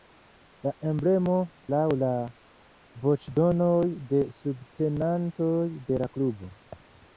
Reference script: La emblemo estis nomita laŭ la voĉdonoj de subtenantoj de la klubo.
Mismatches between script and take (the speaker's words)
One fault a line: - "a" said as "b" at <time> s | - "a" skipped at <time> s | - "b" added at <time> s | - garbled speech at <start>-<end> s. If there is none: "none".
- "estis nomita" skipped at 1.4 s